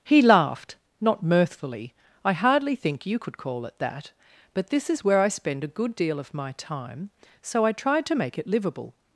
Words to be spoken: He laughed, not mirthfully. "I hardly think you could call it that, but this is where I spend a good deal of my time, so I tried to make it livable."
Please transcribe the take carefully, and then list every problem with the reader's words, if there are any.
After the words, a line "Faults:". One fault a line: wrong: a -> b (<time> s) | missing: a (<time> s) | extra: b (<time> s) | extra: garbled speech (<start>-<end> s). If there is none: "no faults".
He laughed, not mirthfully. "I hardly think you could call it that, but this is where I spend a good deal of my time, so I tried to make it livable."
Faults:
no faults